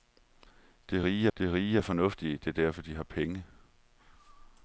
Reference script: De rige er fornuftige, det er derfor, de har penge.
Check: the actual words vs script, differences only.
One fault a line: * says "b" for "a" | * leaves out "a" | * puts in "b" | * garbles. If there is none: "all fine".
* puts in "de rige"